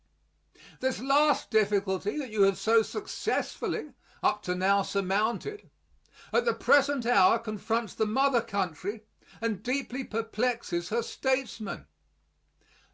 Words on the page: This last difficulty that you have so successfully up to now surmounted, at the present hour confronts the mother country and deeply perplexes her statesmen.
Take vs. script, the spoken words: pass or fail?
pass